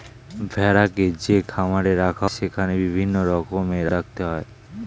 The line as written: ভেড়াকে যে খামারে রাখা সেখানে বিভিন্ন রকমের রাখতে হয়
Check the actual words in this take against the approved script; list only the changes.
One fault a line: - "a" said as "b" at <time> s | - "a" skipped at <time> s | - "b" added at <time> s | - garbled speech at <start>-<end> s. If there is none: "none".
none